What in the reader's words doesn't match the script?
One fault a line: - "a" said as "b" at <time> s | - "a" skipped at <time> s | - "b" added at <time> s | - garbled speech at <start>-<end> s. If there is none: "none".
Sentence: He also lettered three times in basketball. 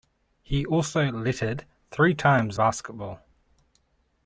- "in" skipped at 2.6 s